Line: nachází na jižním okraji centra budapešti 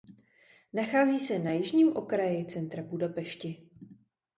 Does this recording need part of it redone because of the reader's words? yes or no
yes